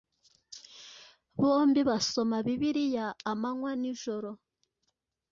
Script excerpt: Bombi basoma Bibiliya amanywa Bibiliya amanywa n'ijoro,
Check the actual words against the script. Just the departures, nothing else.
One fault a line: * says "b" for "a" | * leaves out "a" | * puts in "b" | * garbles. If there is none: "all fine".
* leaves out "Bibiliya amanywa"